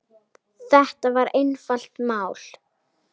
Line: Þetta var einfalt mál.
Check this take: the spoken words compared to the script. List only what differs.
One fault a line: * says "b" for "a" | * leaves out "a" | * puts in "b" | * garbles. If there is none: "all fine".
all fine